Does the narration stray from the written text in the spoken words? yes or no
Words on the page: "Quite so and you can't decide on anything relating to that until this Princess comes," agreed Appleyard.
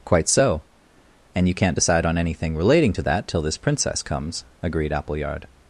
yes